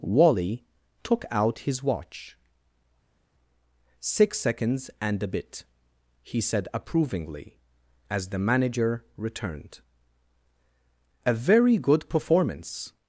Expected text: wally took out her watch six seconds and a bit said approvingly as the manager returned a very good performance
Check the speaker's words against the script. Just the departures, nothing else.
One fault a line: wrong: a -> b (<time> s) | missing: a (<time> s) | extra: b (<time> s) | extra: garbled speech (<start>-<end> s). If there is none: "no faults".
wrong: her -> his (1.6 s)
extra: he (6.2 s)